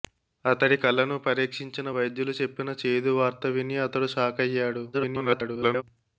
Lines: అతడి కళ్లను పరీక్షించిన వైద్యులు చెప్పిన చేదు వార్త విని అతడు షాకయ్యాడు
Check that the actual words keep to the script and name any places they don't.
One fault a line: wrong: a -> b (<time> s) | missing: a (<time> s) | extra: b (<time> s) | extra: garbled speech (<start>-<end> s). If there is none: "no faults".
extra: garbled speech (4.9-5.8 s)